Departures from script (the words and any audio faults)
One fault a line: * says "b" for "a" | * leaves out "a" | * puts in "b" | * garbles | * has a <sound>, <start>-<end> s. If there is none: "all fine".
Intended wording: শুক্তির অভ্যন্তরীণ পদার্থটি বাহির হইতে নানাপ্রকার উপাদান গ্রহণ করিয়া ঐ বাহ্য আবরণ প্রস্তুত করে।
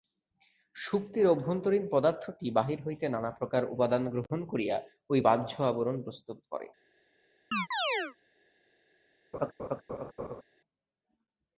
* has a chirp, 7.5-8.2 s
* has a laugh, 9.3-10.4 s